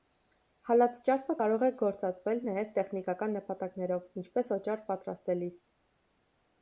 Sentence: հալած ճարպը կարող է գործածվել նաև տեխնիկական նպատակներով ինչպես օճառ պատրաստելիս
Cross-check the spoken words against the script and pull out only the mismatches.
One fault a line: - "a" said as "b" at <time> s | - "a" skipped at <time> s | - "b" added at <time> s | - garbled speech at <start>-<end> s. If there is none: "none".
none